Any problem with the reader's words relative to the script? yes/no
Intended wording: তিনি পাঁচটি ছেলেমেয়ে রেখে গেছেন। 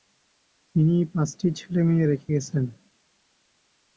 no